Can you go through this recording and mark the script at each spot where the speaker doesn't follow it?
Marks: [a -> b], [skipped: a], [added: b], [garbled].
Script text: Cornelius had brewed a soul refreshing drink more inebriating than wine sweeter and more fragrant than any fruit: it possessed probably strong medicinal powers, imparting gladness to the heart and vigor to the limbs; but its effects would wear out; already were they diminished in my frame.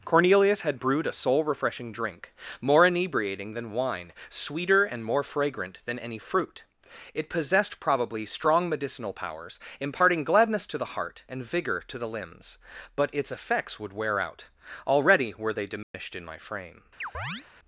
Cornelius had brewed a soul refreshing drink more inebriating than wine sweeter and more fragrant than any fruit: it possessed probably strong medicinal powers, imparting gladness to the heart and vigor to the limbs; but its effects would wear out; already were they diminished in my frame.